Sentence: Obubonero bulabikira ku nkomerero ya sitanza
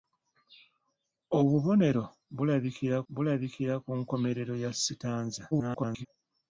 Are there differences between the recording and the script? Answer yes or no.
yes